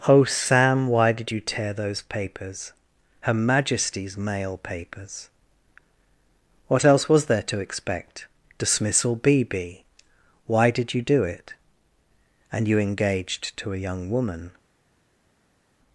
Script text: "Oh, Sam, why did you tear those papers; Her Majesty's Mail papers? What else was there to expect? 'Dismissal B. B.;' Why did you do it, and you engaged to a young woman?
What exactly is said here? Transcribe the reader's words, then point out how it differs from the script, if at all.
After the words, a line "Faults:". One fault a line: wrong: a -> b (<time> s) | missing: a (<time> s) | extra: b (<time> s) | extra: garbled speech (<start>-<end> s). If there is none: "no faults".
"Oh, Sam, why did you tear those papers; Her Majesty's Mail papers? What else was there to expect? 'Dismissal B. B.;' Why did you do it, and you engaged to a young woman?
Faults:
no faults